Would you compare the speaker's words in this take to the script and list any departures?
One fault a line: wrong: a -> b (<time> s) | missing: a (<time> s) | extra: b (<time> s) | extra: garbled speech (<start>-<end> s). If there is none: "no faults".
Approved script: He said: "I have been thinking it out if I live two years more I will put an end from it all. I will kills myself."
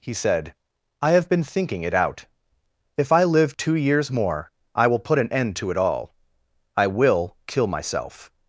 wrong: from -> to (5.6 s)
wrong: kills -> kill (7.5 s)